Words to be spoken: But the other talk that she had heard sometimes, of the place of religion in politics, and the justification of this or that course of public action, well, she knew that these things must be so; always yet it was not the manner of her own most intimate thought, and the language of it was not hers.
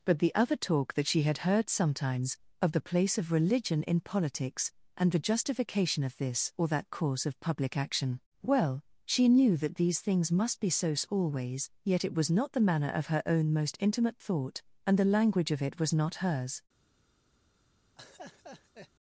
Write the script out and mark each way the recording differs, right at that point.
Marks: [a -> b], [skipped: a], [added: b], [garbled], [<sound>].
But the other talk that she had heard sometimes, of the place of religion in politics, and the justification of this or that course of public action, well, she knew that these things must be so; always yet it was not the manner of her own most intimate thought, and the language of it was not hers. [laugh]